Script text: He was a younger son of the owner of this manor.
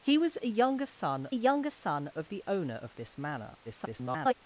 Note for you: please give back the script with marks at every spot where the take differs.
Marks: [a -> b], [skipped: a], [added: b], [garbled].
He was a younger son [added: younger son] of the owner of this manor. [garbled]